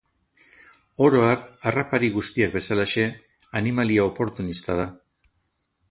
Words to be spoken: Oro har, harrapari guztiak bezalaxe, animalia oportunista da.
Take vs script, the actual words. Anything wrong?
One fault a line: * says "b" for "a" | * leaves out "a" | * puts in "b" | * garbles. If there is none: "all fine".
all fine